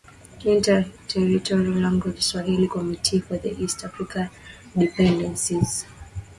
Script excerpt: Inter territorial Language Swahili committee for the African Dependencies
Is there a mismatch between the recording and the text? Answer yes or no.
yes